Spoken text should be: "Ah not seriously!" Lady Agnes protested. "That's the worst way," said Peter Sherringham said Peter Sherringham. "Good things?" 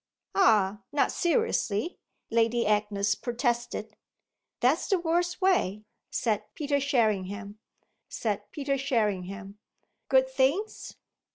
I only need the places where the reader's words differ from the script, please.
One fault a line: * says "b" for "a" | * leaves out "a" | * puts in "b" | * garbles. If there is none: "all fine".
all fine